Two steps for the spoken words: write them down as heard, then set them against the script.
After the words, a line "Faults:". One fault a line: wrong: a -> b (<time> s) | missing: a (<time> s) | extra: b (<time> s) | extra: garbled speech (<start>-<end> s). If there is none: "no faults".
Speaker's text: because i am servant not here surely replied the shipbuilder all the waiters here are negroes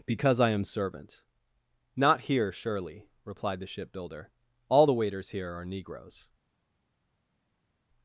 because i am servant not here surely replied the shipbuilder all the waiters here are negroes
Faults:
no faults